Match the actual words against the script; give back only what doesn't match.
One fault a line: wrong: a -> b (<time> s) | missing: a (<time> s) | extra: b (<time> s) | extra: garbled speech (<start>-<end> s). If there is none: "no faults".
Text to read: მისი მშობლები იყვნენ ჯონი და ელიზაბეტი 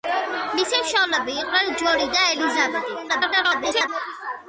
extra: garbled speech (3.1-3.9 s)